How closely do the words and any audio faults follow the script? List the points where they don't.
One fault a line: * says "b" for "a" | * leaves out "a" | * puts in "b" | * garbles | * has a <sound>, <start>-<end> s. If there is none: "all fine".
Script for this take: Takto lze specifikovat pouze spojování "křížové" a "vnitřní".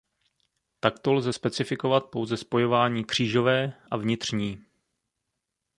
all fine